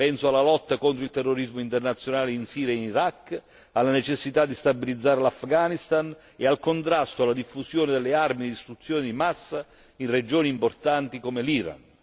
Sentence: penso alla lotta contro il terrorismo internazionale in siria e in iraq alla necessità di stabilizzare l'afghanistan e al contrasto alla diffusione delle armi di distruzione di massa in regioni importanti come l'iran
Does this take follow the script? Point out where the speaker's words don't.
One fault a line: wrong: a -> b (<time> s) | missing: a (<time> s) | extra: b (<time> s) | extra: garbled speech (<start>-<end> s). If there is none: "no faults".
no faults